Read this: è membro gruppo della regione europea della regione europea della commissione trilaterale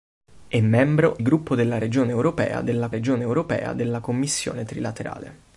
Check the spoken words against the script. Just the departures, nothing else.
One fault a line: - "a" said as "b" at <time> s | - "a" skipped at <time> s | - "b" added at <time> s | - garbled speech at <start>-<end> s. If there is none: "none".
none